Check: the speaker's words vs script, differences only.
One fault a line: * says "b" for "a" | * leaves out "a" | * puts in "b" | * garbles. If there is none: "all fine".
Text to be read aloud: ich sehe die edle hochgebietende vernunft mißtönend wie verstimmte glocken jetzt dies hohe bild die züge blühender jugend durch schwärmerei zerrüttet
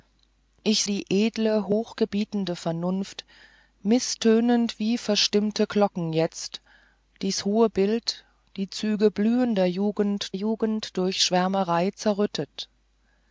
* leaves out "sehe"
* puts in "jugend"